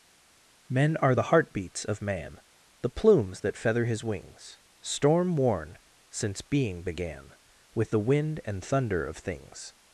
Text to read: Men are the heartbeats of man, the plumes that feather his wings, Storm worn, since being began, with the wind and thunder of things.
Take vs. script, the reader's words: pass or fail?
pass